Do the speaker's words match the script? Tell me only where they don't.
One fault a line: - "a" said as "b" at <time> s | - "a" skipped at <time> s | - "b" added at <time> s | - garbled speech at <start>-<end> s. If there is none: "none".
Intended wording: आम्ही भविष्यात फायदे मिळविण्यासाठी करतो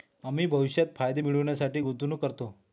- "गुंतवणूक" added at 1.8 s